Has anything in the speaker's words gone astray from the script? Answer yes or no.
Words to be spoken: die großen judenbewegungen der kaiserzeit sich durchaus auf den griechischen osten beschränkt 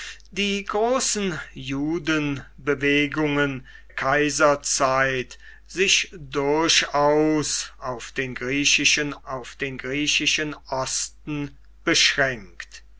yes